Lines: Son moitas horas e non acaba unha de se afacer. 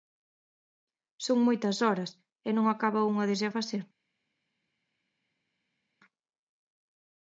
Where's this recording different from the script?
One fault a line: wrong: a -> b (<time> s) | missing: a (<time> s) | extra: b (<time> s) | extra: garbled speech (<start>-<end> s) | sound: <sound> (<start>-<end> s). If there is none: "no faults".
no faults